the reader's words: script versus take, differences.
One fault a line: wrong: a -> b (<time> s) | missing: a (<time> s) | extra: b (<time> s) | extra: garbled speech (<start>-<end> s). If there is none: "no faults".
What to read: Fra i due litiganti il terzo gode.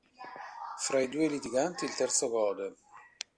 no faults